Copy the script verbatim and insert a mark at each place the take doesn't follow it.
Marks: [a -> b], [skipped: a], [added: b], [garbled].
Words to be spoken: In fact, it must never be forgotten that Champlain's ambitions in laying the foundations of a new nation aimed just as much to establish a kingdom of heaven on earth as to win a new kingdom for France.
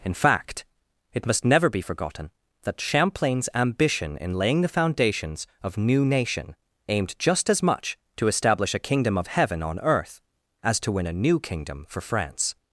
In fact, it must never be forgotten that Champlain's [ambitions -> ambition] in laying the foundations of [skipped: a] new nation aimed just as much to establish a kingdom of heaven on earth as to win a new kingdom for France.